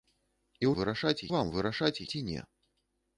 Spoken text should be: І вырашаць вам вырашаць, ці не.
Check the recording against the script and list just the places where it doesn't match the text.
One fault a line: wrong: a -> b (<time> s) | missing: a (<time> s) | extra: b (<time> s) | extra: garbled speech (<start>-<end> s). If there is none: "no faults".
no faults